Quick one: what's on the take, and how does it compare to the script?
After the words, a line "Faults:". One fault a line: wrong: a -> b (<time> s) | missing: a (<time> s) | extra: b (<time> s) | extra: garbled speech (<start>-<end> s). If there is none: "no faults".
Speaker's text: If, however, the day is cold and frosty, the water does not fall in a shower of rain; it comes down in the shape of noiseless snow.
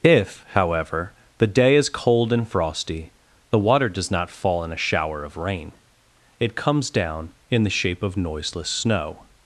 If, however, the day is cold and frosty, the water does not fall in a shower of rain; it comes down in the shape of noiseless snow.
Faults:
no faults